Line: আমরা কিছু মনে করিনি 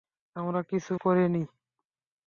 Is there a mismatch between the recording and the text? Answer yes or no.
yes